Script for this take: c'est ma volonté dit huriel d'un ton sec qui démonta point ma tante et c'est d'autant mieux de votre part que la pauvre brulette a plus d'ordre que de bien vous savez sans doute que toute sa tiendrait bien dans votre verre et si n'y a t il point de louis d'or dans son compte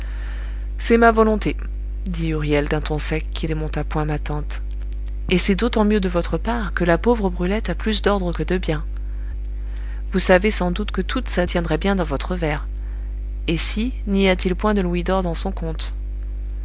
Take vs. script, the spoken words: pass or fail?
pass